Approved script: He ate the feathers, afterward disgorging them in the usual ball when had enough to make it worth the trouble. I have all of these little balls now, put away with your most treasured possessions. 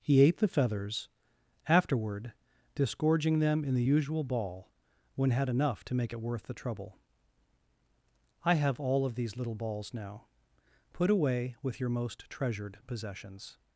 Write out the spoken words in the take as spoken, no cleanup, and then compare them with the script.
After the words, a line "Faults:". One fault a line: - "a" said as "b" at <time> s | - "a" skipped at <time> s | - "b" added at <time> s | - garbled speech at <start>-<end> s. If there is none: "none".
He ate the feathers, afterward disgorging them in the usual ball when had enough to make it worth the trouble. I have all of these little balls now, put away with your most treasured possessions.
Faults:
none